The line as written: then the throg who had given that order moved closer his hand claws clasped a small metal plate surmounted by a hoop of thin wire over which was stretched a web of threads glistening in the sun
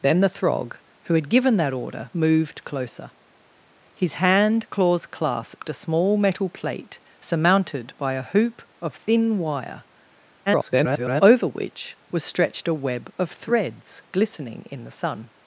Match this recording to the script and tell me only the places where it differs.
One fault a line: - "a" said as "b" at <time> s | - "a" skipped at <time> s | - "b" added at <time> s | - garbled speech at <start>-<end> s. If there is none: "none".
- garbled speech at 10.5-11.2 s